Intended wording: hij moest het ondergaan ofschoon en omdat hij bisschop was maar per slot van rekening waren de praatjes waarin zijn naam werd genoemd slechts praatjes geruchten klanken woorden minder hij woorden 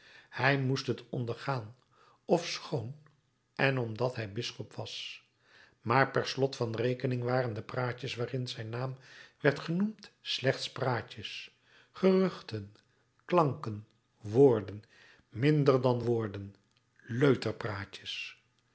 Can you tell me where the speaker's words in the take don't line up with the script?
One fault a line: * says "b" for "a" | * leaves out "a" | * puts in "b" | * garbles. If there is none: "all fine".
* says "dan" for "hij"